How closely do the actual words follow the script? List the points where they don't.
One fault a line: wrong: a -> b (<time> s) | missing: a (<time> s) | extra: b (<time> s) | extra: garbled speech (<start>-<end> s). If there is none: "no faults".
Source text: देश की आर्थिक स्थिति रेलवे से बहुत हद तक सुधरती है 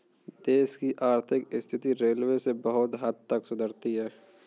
no faults